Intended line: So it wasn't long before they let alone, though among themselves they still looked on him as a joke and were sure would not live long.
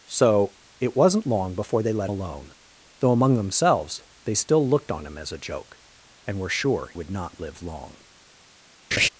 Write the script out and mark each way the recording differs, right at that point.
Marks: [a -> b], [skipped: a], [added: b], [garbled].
So it wasn't long before they let alone, though among themselves they still looked on him as a joke and were sure would not live long.